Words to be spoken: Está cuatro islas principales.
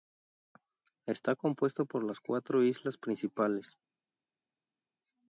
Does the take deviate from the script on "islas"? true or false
false